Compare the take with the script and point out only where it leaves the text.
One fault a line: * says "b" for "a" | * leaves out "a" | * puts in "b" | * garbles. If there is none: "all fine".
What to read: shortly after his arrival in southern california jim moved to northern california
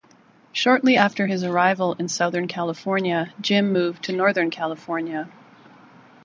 all fine